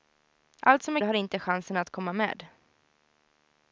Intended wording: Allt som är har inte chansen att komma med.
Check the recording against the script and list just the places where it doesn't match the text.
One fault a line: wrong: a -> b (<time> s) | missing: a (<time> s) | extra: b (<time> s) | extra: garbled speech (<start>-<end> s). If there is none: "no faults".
no faults